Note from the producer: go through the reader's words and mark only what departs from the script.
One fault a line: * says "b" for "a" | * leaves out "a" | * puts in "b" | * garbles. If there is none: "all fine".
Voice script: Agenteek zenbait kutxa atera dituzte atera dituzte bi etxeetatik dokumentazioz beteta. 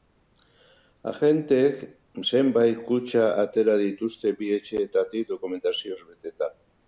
* leaves out "atera dituzte"